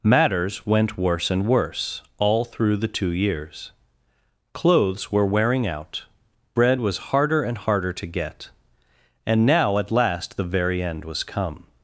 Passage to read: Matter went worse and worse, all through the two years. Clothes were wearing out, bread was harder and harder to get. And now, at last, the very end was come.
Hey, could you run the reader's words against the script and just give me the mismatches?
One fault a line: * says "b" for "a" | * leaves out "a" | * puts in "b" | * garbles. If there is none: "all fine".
* says "Matters" for "Matter"